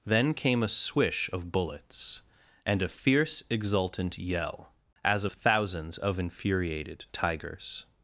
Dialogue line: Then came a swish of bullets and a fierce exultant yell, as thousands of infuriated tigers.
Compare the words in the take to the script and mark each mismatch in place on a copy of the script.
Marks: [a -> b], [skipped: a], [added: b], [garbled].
Then came a swish of bullets and a fierce exultant yell, as thousands of infuriated tigers.